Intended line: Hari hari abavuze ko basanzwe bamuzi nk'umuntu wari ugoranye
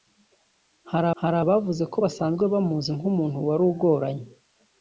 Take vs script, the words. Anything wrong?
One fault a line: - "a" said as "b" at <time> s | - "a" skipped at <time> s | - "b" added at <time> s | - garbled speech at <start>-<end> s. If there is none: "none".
none